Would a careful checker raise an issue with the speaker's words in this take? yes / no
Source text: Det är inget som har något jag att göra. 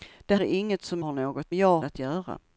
no